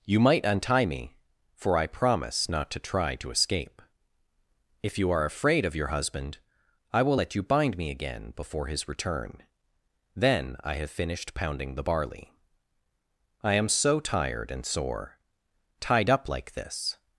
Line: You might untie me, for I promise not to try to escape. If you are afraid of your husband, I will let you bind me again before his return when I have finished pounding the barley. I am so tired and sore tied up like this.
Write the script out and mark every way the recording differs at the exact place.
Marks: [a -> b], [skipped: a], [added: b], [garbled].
You might untie me, for I promise not to try to escape. If you are afraid of your husband, I will let you bind me again before his return [when -> then] I have finished pounding the barley. I am so tired and sore tied up like this.